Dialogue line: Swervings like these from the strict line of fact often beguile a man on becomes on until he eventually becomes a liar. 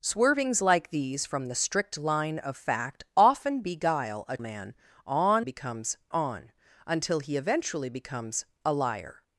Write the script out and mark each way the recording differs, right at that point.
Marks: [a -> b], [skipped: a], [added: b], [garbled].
Swervings like these from the strict line of fact often beguile a man on becomes on until he eventually becomes a liar.